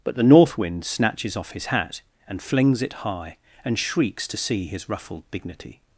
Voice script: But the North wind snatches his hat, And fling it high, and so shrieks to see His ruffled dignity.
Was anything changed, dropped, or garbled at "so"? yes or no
yes